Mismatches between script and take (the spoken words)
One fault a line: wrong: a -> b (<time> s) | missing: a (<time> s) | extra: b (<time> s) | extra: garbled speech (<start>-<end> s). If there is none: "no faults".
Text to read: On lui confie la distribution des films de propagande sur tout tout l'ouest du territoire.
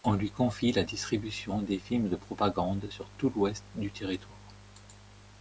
missing: tout (3.3 s)